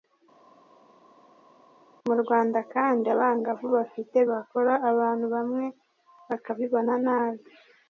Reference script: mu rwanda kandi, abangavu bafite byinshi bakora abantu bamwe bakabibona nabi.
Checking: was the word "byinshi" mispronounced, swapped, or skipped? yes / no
yes